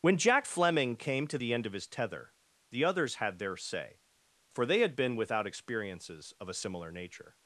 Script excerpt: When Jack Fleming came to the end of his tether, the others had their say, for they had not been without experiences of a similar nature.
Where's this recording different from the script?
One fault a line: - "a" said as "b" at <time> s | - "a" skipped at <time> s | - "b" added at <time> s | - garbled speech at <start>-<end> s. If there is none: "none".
- "not" skipped at 4.9 s